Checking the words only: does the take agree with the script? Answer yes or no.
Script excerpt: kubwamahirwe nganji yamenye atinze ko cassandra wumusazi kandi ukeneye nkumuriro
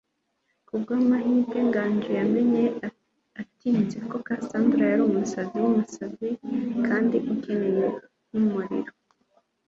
no